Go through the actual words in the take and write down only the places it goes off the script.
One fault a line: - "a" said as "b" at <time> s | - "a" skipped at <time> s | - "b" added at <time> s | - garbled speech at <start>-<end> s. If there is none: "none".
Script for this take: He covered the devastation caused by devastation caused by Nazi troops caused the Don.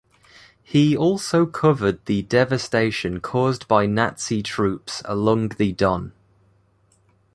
- "also" added at 1.0 s
- "devastation caused by" skipped at 3.9 s
- "caused" said as "along" at 5.0 s